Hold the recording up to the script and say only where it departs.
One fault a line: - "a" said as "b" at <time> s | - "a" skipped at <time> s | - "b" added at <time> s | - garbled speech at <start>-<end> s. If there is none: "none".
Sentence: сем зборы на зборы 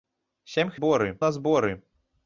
none